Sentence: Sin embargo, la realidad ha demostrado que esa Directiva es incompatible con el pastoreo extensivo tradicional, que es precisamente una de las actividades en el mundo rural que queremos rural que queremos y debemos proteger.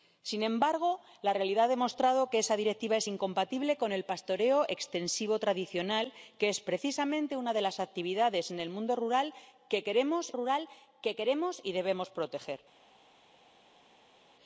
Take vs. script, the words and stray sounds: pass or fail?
pass